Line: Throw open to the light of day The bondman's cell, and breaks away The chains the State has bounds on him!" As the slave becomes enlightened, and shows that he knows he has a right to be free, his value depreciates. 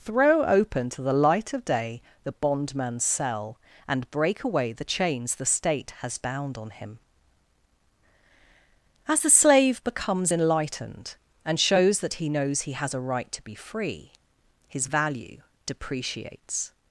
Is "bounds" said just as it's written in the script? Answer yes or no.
no